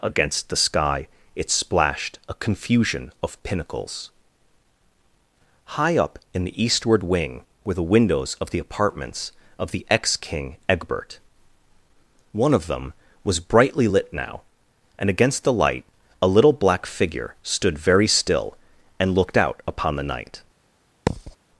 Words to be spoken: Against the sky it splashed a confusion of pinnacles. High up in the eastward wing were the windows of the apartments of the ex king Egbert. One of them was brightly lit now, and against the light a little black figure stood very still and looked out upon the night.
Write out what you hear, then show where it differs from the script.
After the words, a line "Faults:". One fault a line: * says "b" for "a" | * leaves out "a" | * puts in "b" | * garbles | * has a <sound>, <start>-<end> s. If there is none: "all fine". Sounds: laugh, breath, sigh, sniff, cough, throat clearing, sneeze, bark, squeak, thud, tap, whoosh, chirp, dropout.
Against the sky it splashed a confusion of pinnacles. High up in the eastward wing were the windows of the apartments of the ex king Egbert. One of them was brightly lit now, and against the light a little black figure stood very still and looked out upon the night.
Faults:
* has a thud, 21.1-21.4 s